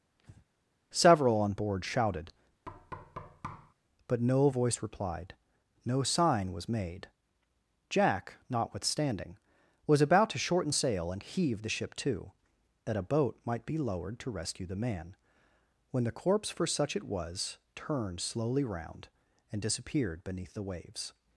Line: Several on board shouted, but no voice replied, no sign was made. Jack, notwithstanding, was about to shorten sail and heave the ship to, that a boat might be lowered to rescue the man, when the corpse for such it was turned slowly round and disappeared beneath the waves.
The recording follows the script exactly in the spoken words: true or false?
true